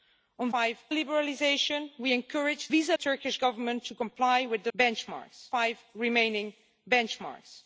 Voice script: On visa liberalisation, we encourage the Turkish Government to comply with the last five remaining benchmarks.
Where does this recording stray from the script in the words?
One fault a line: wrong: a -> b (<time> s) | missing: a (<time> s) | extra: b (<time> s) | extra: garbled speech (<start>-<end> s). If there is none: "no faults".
wrong: visa -> five (0.5 s)
wrong: the -> visa (2.7 s)
wrong: last -> benchmarks (4.7 s)